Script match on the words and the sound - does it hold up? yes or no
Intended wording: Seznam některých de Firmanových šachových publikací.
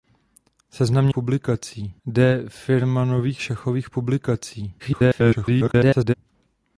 no